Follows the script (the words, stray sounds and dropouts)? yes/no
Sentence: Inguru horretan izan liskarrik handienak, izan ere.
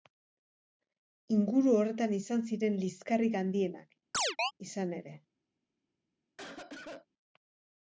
no